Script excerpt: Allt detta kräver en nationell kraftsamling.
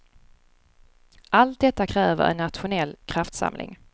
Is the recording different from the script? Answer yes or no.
no